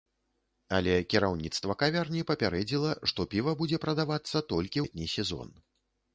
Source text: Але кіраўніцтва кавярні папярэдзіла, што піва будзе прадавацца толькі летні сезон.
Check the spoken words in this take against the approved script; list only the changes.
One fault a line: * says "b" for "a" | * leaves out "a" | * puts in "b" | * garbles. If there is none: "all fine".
all fine